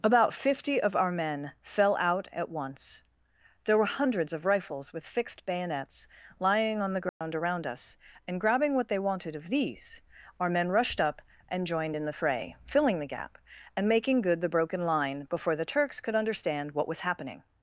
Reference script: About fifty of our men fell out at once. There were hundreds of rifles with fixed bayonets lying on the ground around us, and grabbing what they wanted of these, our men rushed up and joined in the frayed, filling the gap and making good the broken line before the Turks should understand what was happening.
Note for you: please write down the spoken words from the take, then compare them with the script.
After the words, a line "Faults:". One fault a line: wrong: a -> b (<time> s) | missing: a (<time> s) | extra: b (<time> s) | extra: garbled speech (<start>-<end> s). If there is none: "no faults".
About fifty of our men fell out at once. There were hundreds of rifles with fixed bayonets lying on the ground around us, and grabbing what they wanted of these, our men rushed up and joined in the fray, filling the gap and making good the broken line before the Turks could understand what was happening.
Faults:
wrong: frayed -> fray (12.1 s)
wrong: should -> could (16.0 s)